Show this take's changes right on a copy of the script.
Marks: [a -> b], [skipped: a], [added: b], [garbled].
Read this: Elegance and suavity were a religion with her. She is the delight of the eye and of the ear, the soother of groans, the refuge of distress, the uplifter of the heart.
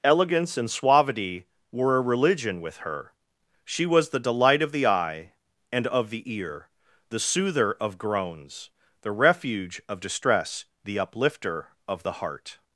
Elegance and suavity were a religion with her. She [is -> was] the delight of the eye and of the ear, the soother of groans, the refuge of distress, the uplifter of the heart.